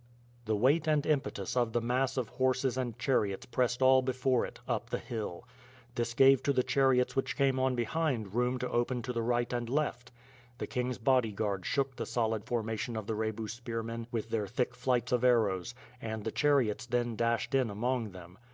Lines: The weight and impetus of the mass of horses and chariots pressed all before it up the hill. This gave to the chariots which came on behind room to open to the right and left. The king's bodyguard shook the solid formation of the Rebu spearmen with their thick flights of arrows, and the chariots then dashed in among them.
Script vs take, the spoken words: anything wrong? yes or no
no